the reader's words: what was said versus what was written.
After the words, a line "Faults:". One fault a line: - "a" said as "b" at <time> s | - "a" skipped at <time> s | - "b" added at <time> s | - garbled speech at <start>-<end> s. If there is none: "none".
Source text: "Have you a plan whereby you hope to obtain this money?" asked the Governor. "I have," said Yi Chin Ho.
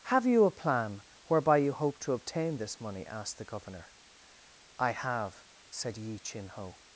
"Have you a plan whereby you hope to obtain this money?" asked the Governor. "I have," said Yi Chin Ho.
Faults:
none